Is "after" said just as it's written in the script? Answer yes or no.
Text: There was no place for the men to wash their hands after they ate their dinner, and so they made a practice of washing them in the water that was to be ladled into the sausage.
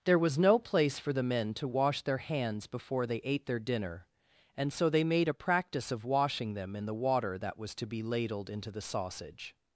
no